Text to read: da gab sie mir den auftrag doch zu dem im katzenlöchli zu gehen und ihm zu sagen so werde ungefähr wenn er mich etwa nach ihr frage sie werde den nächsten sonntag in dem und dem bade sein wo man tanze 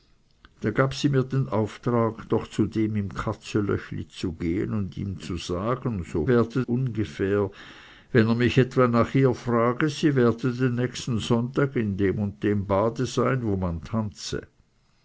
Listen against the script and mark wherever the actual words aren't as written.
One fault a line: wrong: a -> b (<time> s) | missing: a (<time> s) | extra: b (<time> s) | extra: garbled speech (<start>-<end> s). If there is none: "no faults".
no faults